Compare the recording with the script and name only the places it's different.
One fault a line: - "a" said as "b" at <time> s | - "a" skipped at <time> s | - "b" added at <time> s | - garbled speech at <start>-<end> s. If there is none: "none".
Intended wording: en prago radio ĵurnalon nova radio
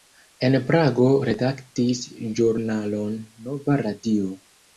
- "radio" said as "redaktis" at 1.3 s